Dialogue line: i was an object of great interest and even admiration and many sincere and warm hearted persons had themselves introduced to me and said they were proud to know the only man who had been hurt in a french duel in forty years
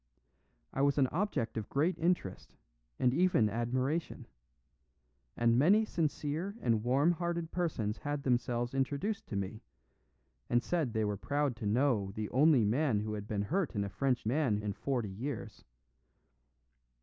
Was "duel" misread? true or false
true